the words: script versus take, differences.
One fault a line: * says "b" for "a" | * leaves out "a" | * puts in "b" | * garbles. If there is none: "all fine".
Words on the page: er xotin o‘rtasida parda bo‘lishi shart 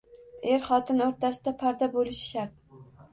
all fine